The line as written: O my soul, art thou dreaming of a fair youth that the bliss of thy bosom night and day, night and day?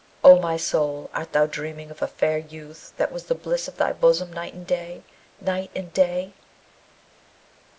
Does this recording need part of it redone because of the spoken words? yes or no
yes